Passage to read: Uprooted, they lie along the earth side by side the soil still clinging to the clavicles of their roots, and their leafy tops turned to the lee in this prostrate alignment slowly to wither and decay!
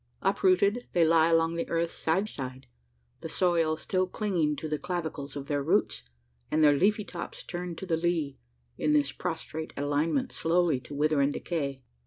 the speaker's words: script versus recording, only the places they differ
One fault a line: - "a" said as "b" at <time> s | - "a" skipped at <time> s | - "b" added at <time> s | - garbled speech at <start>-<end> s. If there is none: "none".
- "by" skipped at 2.2 s